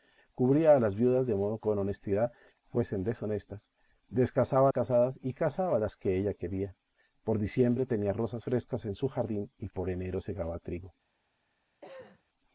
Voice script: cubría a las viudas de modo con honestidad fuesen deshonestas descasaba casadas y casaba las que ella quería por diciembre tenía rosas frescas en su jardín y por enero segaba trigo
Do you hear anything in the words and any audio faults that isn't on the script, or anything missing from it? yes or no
yes